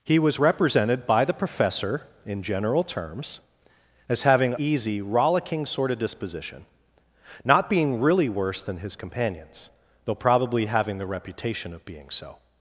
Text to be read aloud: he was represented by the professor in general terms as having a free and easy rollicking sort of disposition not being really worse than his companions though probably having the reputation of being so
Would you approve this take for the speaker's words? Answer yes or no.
no